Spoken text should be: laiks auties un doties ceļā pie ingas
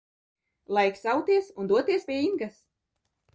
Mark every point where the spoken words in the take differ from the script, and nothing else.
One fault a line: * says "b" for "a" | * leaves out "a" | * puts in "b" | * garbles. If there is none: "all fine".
* leaves out "ceļā"